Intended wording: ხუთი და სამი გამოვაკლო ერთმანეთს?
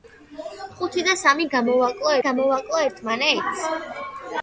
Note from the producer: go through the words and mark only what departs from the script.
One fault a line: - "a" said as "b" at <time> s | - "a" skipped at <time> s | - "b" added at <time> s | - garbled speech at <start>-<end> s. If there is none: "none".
- "გამოვაკლო" added at 2.3 s